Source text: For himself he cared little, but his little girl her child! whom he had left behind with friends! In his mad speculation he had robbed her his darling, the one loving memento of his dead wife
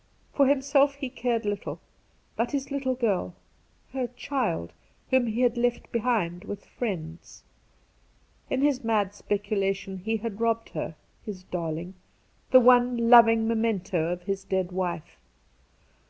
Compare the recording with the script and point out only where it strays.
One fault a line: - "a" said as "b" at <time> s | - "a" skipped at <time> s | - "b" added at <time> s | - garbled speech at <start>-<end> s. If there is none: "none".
none